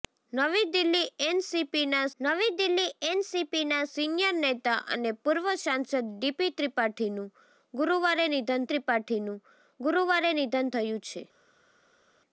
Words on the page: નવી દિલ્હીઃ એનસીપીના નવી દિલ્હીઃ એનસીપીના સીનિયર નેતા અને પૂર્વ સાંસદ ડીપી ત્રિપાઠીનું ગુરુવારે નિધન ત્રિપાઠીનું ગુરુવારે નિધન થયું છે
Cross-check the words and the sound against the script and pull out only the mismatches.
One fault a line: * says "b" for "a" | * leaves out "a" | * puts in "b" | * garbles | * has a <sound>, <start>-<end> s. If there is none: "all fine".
all fine